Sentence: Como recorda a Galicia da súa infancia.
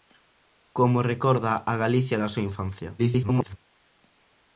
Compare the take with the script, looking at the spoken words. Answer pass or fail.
fail